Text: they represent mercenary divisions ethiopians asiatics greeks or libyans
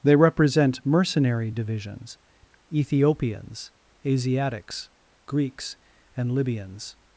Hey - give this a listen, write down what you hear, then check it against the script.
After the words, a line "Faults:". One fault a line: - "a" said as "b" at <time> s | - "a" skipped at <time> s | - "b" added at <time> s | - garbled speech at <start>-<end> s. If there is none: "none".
they represent mercenary divisions ethiopians asiatics greeks and libyans
Faults:
- "or" said as "and" at 6.2 s